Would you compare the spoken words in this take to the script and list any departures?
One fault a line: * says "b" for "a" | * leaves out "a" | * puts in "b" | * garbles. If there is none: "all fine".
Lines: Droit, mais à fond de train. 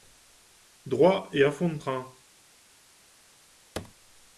* says "et" for "mais"